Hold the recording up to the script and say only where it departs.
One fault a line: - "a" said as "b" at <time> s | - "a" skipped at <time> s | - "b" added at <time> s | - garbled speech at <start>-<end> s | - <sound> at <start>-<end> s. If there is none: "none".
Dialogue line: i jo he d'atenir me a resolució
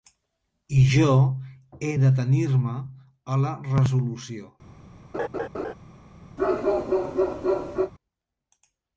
- "la" added at 3.5 s
- laugh at 5.1-5.7 s
- bark at 6.4-7.9 s